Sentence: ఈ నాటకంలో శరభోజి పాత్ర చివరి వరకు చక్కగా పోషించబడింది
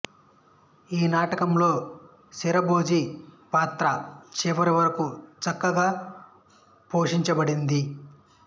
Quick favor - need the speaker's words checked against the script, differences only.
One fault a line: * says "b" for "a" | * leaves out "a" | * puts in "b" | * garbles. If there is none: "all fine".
all fine